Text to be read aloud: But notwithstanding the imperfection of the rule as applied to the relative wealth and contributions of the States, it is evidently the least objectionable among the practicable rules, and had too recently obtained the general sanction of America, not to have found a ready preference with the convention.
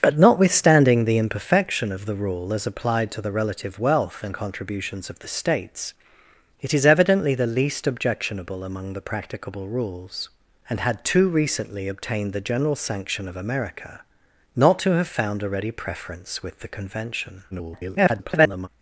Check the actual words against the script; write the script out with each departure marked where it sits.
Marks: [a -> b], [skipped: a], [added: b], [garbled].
But notwithstanding the imperfection of the rule as applied to the relative wealth and contributions of the States, it is evidently the least objectionable among the practicable rules, and had too recently obtained the general sanction of America, not to have found a ready preference with the convention. [garbled]